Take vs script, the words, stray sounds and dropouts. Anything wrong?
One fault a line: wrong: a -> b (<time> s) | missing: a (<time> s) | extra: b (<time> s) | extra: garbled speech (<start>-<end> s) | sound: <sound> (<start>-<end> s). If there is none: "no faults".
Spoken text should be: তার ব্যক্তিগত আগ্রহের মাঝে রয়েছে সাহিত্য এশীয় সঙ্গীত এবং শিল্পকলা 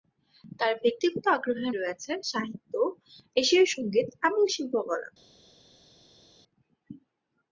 missing: মাঝে (1.7 s)